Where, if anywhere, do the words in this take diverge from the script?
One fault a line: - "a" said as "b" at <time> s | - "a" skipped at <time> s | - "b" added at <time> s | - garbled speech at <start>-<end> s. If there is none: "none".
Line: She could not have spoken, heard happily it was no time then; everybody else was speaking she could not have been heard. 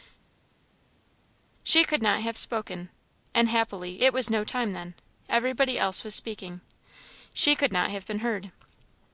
- "heard" said as "and" at 3.3 s